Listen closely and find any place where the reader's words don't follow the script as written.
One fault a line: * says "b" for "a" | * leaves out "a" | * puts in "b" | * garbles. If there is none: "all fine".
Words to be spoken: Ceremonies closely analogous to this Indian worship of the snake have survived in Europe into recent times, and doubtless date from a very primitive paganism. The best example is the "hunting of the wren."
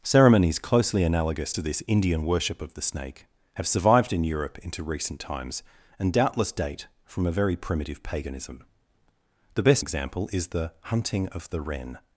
all fine